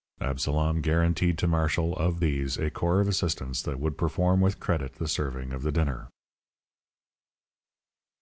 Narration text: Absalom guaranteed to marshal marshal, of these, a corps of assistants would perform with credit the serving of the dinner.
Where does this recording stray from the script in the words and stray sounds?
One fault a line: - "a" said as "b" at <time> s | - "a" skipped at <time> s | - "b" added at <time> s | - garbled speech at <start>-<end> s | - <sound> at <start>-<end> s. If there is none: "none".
- "marshal" skipped at 1.9 s
- "that" added at 3.6 s